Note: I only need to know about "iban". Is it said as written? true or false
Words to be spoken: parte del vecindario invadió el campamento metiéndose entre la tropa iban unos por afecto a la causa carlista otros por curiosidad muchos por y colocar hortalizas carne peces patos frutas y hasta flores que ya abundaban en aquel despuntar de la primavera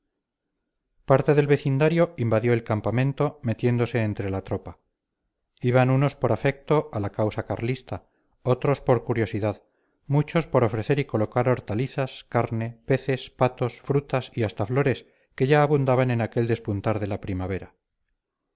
true